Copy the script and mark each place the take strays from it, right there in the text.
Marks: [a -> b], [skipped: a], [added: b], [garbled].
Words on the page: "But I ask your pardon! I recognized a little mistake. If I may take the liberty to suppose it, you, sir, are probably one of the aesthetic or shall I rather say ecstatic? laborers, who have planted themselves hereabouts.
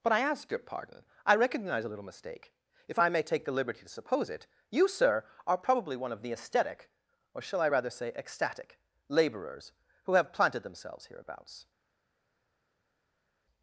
"But I ask your pardon! I [recognized -> recognize] a little mistake. If I may take the liberty to suppose it, you, sir, are probably one of the aesthetic or shall I rather say ecstatic? laborers, who have planted themselves hereabouts.